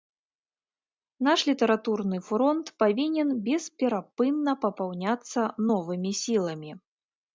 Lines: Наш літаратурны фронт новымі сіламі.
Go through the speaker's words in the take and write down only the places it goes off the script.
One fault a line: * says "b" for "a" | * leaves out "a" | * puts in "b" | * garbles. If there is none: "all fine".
* puts in "павінен бесперапынна папаўняцца"